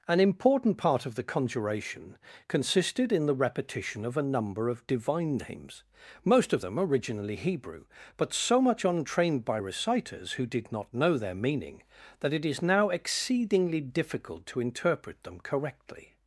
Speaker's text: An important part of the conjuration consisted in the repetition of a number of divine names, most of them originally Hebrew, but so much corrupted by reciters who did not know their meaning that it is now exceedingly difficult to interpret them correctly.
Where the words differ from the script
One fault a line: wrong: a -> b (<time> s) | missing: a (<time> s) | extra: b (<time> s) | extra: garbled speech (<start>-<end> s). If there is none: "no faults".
wrong: corrupted -> untrained (8.8 s)